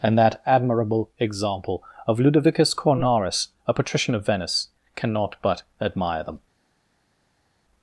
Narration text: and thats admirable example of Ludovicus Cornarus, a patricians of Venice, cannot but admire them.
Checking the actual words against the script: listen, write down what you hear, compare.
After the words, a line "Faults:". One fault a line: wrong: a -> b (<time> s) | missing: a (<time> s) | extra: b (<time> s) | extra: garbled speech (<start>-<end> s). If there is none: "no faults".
and that admirable example of Ludovicus Cornarus, a patrician of Venice, cannot but admire them.
Faults:
wrong: thats -> that (0.2 s)
wrong: patricians -> patrician (3.7 s)